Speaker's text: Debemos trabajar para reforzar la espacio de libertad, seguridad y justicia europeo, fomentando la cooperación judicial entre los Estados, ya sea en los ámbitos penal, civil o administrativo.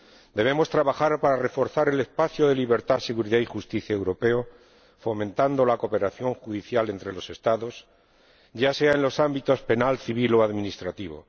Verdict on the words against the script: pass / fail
fail